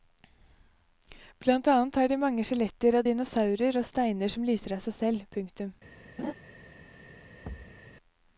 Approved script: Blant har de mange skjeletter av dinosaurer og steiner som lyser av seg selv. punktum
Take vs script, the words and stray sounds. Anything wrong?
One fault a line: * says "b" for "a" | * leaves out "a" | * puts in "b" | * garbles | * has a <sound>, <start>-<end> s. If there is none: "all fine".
* puts in "annet"
* has a laugh, 6.2-6.3 s
* has a thud, 7.4-7.8 s